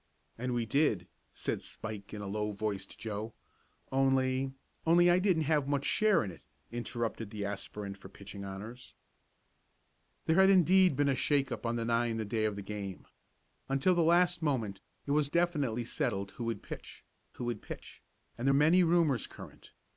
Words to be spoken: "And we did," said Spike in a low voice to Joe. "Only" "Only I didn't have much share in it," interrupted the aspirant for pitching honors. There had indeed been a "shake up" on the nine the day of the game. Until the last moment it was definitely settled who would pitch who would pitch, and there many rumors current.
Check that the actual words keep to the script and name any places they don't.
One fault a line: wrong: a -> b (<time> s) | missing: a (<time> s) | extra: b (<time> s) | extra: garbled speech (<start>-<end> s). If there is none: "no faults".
no faults